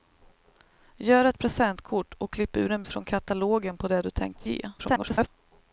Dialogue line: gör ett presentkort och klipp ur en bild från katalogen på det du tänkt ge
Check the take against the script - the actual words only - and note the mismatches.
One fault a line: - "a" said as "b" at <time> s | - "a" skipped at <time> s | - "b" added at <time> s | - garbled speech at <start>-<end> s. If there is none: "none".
- "bild" skipped at 2.8 s
- garbled speech at 4.8-5.3 s